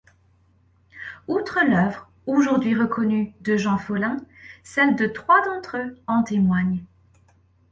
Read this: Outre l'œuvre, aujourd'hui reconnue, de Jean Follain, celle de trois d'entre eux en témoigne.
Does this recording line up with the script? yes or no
yes